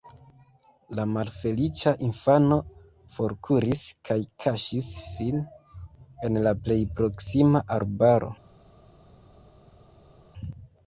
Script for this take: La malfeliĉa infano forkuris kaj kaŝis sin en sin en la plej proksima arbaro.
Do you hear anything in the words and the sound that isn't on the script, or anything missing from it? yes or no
yes